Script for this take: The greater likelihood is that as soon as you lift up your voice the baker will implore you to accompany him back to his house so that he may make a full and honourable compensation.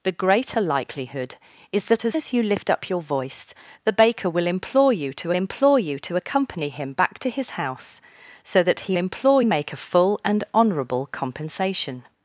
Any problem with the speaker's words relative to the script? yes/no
yes